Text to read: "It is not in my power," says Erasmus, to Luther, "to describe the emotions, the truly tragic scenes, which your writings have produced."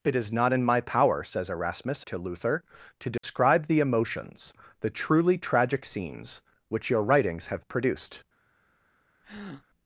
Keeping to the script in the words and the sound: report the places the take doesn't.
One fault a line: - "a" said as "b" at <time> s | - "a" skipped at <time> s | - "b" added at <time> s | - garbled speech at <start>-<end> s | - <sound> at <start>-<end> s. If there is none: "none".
- dropout at 3.2-3.2 s
- breath at 9.2-9.7 s